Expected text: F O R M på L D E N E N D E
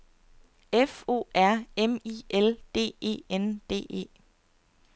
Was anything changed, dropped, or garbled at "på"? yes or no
yes